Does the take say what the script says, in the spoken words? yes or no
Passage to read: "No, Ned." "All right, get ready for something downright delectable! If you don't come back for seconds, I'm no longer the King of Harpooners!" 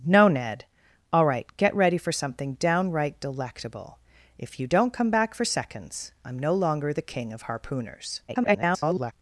no